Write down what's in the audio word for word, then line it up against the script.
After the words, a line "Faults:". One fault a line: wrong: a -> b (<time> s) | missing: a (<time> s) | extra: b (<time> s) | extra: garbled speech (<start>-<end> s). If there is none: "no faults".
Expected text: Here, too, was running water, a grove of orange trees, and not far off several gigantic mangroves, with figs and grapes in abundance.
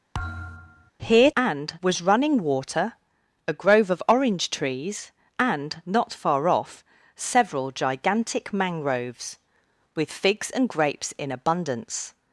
Here, and, was running water, a grove of orange trees, and not far off several gigantic mangroves, with figs and grapes in abundance.
Faults:
wrong: too -> and (1.4 s)